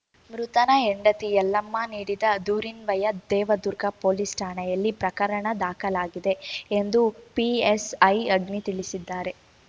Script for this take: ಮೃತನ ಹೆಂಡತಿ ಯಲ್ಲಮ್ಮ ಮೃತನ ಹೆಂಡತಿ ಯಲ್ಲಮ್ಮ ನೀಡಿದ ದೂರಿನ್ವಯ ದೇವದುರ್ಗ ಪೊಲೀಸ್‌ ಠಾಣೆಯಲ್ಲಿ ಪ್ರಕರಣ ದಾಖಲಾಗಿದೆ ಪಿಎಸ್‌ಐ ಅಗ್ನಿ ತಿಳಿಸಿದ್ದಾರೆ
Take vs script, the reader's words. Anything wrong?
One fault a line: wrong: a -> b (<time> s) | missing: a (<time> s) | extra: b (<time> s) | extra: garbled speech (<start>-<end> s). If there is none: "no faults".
missing: ಮೃತನ ಹೆಂಡತಿ ಯಲ್ಲಮ್ಮ (1.8 s)
extra: ಎಂದು (6.7 s)